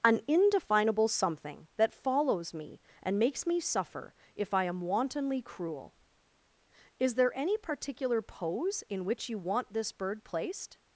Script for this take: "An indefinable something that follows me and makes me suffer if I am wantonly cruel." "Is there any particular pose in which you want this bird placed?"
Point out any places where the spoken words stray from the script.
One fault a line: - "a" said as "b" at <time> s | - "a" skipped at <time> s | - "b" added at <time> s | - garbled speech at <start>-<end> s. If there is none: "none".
none